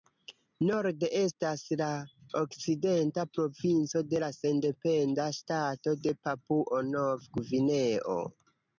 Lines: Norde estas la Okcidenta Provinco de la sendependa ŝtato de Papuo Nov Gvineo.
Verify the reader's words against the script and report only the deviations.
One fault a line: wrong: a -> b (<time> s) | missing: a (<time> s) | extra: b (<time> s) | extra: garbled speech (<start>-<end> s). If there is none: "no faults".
no faults